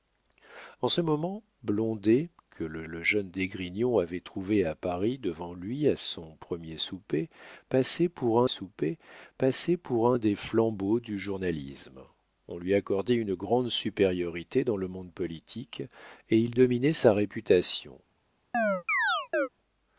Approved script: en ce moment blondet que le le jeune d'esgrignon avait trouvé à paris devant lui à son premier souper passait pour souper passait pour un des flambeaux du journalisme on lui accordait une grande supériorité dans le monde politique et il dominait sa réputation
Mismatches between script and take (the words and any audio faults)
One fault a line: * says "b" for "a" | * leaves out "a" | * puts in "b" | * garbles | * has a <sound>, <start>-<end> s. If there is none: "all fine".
* has a chirp, 18.5-19.5 s